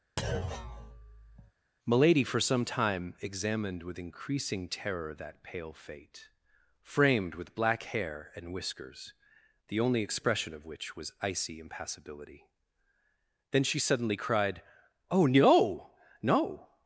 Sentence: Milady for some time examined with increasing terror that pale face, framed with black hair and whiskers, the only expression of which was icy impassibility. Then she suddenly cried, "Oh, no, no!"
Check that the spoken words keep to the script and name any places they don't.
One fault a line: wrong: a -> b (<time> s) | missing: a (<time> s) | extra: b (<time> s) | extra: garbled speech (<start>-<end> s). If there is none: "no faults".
wrong: face -> fate (5.7 s)